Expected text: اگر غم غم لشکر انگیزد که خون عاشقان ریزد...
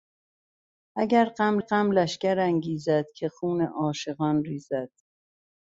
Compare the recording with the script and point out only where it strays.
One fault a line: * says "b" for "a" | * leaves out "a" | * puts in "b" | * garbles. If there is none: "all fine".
all fine